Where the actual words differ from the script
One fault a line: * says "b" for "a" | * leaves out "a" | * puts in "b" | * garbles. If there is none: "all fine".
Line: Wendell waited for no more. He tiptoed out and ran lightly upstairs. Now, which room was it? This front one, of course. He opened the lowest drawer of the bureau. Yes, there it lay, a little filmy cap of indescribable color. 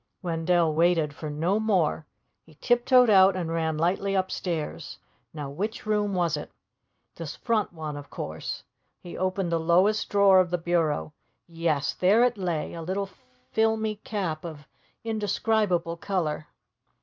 all fine